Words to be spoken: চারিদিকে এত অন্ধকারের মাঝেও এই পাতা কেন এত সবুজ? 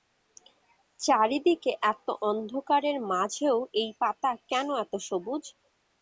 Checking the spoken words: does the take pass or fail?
pass